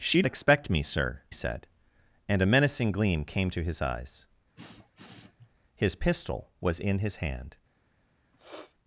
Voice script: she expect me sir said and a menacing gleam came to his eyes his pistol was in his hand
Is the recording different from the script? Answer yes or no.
no